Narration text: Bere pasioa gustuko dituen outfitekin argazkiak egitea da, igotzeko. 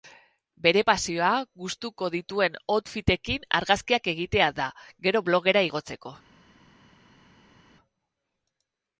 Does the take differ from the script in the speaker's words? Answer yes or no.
yes